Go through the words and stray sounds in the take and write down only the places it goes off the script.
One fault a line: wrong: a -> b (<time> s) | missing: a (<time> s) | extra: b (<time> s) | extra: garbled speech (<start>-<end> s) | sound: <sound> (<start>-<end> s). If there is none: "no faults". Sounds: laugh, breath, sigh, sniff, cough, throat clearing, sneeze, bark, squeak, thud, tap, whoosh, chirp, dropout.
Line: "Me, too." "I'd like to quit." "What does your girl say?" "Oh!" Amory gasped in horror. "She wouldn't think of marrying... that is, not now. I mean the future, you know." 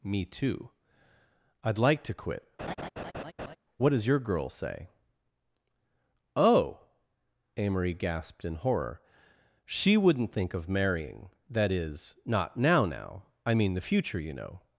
sound: laugh (2.6-3.6 s)
extra: now (12.9 s)